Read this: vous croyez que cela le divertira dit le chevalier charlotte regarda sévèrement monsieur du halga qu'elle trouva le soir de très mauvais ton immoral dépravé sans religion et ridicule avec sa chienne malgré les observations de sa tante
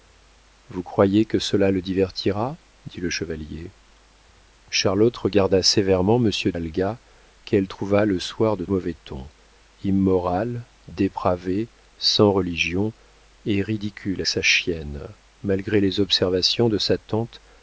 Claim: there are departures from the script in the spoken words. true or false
true